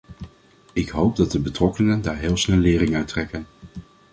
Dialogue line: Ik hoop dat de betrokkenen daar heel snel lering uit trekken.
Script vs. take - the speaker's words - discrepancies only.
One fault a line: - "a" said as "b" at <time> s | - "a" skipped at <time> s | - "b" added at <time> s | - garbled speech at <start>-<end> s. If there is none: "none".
none